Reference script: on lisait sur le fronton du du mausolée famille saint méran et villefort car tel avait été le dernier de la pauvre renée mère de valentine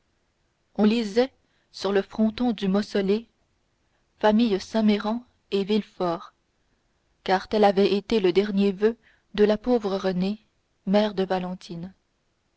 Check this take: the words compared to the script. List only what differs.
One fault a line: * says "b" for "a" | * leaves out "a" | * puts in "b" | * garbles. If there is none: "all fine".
* leaves out "du"
* puts in "voeu"